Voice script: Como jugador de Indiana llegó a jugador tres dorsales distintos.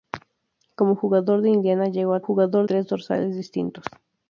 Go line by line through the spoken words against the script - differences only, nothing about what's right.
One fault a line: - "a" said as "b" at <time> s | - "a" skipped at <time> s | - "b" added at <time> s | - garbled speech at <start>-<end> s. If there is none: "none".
none